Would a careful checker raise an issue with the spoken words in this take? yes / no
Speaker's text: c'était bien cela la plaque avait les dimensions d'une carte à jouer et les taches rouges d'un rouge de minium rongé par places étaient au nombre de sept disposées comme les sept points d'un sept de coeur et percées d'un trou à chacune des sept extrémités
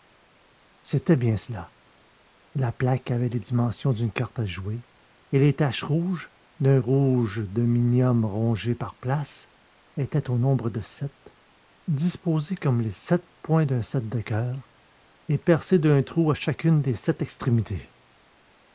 no